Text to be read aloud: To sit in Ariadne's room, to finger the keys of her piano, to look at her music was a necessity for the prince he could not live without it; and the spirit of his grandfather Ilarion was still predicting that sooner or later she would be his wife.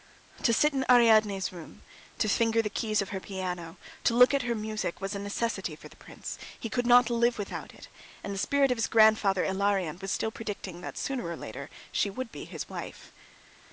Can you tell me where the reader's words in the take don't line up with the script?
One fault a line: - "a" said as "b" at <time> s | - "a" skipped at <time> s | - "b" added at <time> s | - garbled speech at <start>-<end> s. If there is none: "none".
none